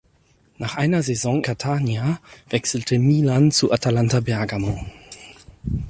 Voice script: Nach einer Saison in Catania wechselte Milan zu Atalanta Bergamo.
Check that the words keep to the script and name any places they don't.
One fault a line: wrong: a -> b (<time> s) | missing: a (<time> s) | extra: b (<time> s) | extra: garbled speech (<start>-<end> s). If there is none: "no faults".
missing: in (1.4 s)